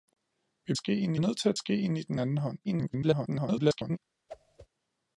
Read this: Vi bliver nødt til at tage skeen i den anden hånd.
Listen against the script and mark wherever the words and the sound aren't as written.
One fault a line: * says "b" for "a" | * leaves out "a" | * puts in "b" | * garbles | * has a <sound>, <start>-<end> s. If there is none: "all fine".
* says "skeen" for "bliver"
* leaves out "tage"
* garbles
* has a whoosh, 4.3-4.7 s